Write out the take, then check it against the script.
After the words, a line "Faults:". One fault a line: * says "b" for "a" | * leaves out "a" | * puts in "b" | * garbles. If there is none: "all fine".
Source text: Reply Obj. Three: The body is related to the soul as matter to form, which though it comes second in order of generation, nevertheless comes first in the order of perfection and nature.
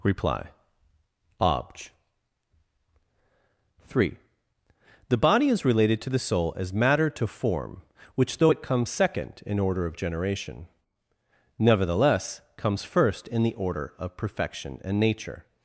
Reply Obj. Three: The body is related to the soul as matter to form, which though it comes second in order of generation, nevertheless comes first in the order of perfection and nature.
Faults:
all fine